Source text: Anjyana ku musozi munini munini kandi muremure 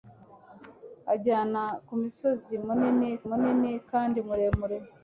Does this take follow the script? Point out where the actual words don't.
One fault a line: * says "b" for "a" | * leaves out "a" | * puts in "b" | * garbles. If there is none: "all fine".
all fine